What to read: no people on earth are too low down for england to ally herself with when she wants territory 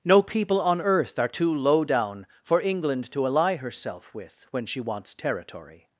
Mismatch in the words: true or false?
false